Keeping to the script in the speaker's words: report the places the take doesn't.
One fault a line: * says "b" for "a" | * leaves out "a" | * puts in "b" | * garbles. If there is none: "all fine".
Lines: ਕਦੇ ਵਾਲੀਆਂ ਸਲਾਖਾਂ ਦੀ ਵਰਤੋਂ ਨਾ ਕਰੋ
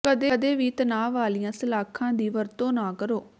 * puts in "ਵੀ ਤਣਾਅ"